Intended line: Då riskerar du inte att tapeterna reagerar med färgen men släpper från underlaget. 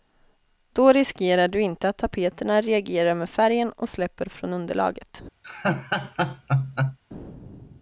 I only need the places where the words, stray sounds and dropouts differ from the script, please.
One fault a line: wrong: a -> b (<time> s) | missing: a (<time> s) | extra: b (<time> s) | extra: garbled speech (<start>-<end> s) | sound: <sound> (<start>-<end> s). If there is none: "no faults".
wrong: men -> och (3.7 s)
sound: laugh (5.4-7.0 s)